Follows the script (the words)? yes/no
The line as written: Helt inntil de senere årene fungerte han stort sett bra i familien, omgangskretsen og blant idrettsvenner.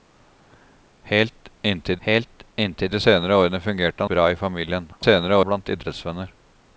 no